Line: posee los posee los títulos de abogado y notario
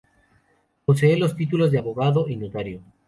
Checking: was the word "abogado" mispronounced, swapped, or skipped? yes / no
no